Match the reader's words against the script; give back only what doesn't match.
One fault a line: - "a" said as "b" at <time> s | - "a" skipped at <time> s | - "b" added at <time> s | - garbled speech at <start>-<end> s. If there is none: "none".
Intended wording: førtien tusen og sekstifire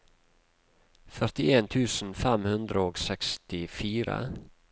- "fem hundre" added at 2.2 s